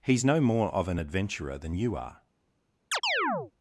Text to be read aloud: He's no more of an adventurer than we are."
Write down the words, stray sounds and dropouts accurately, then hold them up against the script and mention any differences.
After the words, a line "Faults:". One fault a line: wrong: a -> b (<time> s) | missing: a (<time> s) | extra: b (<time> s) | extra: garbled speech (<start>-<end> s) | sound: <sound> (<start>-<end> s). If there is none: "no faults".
He's no more of an adventurer than you are."
Faults:
wrong: we -> you (1.7 s)
sound: chirp (2.9-3.5 s)